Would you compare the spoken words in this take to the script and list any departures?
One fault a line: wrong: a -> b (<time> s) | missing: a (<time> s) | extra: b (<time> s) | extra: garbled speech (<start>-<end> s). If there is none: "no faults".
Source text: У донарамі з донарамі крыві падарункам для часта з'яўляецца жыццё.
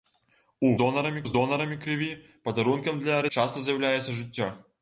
no faults